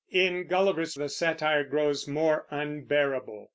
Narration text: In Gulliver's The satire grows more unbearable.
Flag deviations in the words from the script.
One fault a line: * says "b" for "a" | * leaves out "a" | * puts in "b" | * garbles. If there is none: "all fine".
all fine